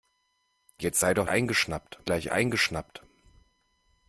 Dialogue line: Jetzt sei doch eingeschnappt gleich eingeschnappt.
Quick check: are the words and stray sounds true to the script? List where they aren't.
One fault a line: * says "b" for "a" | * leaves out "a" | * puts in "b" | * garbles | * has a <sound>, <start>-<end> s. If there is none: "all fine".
all fine